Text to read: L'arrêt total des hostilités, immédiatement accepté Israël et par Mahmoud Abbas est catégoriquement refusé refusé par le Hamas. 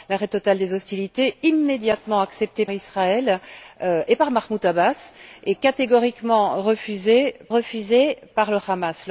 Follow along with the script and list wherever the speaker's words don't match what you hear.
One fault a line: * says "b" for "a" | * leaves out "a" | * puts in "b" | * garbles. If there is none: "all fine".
all fine